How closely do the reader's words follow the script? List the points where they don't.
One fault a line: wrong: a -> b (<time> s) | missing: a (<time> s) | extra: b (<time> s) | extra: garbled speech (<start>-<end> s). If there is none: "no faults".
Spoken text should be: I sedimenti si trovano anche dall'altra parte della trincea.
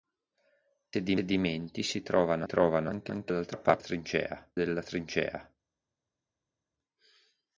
extra: trovano (2.4 s)
wrong: parte -> trincea (3.8 s)